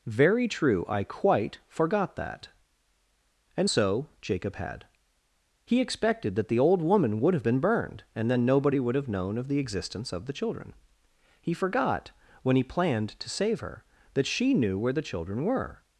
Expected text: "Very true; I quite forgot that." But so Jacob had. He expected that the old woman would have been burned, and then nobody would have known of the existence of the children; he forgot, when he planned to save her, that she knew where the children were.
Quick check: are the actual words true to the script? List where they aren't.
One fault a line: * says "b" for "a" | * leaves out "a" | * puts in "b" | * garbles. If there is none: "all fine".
* says "And" for "But"